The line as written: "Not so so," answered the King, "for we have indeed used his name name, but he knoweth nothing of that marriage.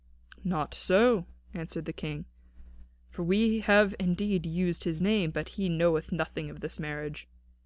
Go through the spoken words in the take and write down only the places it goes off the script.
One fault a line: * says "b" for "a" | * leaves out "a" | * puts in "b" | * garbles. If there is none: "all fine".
* leaves out "so"
* leaves out "name"
* says "this" for "that"